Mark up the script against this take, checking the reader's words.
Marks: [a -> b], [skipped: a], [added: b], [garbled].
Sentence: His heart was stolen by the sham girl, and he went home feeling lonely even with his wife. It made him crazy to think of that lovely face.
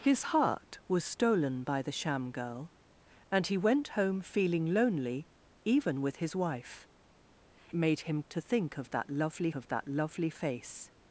His heart was stolen by the sham girl, and he went home feeling lonely even with his wife. [skipped: It] made him [skipped: crazy] to think of that lovely [added: of that lovely] face.